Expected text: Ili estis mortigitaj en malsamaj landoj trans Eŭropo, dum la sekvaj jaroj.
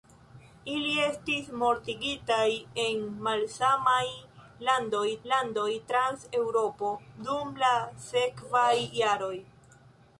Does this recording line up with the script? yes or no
no